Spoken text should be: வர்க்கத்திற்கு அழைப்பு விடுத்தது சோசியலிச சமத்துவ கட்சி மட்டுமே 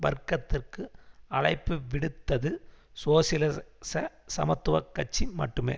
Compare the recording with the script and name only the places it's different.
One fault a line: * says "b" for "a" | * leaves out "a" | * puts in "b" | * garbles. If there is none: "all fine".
all fine